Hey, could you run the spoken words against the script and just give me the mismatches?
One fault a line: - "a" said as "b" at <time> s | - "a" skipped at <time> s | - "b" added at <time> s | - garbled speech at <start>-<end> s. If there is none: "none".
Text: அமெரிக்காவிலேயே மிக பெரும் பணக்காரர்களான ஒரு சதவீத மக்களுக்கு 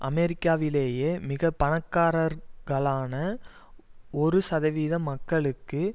- "பெரும்" skipped at 1.5 s